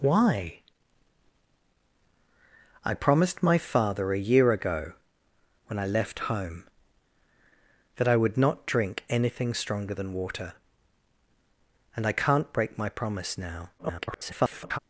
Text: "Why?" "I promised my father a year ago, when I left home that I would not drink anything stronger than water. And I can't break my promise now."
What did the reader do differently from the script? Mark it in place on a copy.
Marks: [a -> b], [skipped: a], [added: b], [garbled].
"Why?" "I promised my father a year ago, when I left home that I would not drink anything stronger than water. And I can't break my promise now." [garbled]